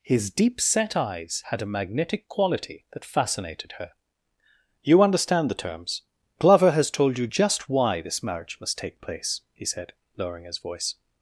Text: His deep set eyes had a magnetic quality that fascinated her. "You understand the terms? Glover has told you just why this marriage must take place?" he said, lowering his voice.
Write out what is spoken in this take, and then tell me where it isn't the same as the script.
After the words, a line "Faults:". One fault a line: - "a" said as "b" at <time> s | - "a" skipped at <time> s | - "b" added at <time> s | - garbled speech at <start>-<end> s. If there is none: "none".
His deep set eyes had a magnetic quality that fascinated her. "You understand the terms? Glover has told you just why this marriage must take place?" he said, lowering his voice.
Faults:
none